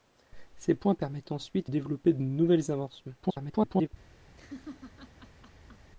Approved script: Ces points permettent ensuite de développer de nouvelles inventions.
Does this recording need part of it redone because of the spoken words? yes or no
yes